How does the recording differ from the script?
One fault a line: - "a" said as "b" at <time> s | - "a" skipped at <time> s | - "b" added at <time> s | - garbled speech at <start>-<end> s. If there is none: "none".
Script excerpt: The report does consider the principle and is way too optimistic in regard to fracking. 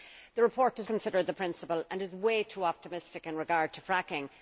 none